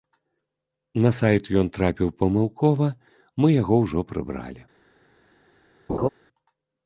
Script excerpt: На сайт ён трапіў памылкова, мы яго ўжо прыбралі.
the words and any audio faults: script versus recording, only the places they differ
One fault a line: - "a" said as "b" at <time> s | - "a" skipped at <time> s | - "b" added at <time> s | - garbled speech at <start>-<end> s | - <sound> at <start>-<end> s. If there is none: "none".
- laugh at 5.9-6.1 s